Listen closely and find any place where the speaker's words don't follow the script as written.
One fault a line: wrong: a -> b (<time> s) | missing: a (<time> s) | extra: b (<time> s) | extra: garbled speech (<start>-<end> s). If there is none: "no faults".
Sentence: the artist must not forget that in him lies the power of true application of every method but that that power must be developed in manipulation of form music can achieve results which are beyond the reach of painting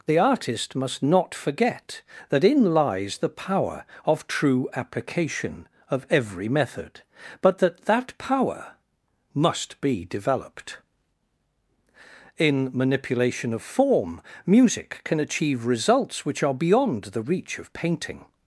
missing: him (2.7 s)